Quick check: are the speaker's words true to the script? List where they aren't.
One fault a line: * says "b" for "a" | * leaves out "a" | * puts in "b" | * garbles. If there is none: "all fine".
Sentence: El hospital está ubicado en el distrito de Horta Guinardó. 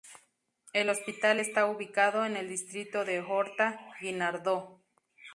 all fine